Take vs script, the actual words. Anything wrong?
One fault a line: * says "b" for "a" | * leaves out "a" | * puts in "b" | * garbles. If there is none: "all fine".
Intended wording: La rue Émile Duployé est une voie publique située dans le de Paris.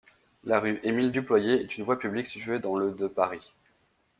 all fine